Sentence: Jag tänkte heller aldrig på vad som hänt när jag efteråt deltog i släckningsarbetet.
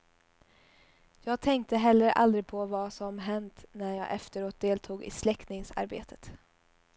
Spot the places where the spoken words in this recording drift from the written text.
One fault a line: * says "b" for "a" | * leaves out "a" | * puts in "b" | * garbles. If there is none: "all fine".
all fine